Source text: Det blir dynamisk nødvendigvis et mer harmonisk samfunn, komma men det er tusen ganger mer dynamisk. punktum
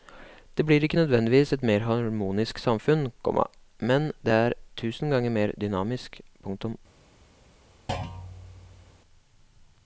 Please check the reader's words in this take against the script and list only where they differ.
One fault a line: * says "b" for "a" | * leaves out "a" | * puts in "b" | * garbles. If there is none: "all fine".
* says "ikke" for "dynamisk"